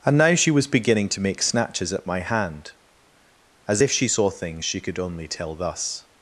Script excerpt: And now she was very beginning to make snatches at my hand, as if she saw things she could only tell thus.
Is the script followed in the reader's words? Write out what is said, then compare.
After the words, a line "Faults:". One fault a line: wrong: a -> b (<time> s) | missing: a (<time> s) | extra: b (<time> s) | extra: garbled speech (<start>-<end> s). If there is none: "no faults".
And now she was beginning to make snatches at my hand, as if she saw things she could only tell thus.
Faults:
missing: very (0.7 s)